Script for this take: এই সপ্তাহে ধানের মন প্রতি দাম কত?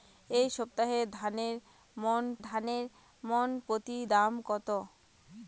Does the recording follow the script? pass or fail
fail